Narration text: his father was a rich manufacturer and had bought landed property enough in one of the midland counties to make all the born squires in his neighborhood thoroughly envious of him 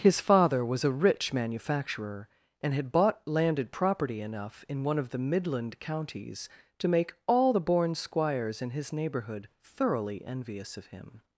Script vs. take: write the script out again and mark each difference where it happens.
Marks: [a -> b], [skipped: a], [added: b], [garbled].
his father was a rich manufacturer and had bought landed property enough in one of the midland counties to make all the born squires in his neighborhood thoroughly envious of him